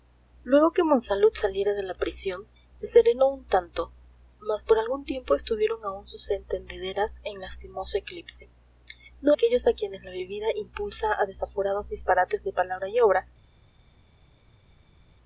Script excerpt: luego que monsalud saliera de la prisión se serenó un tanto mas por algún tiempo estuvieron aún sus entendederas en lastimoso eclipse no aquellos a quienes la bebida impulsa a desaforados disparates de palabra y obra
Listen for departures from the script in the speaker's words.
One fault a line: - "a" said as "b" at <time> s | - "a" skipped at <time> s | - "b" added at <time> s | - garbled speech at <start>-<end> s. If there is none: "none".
none